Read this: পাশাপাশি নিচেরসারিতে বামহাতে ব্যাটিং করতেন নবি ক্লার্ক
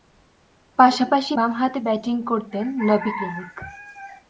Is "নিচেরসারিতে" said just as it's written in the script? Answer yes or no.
no